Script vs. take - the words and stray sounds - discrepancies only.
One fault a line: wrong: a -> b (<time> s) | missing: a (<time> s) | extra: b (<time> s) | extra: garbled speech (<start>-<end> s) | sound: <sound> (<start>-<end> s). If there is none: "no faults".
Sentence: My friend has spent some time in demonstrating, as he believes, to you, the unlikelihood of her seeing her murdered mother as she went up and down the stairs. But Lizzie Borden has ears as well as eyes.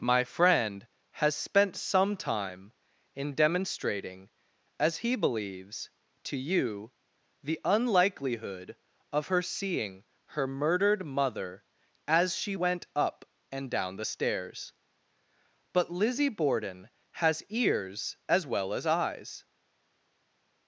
no faults